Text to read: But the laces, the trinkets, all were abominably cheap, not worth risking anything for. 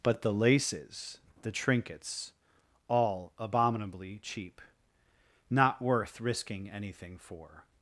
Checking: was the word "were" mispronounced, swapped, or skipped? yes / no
yes